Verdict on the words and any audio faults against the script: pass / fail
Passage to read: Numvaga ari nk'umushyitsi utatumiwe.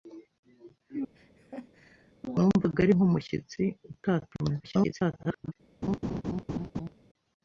fail